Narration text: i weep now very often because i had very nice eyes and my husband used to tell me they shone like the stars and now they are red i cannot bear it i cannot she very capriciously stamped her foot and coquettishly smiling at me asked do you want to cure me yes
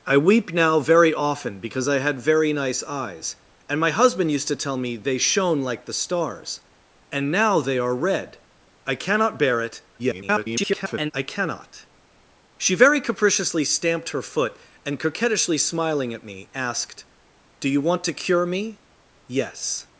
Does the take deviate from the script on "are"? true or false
false